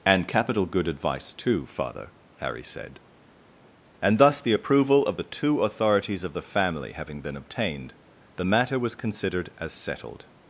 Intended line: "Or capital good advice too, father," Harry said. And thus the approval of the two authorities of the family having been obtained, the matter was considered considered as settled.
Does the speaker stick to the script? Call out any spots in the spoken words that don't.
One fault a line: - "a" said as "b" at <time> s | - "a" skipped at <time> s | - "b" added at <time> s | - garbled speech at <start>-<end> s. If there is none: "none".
- "Or" said as "And" at 0.0 s
- "considered" skipped at 9.5 s